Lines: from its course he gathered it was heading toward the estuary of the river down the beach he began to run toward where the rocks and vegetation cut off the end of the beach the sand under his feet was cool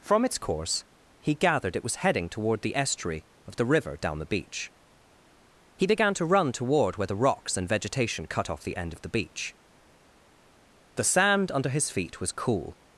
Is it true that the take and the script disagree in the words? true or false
false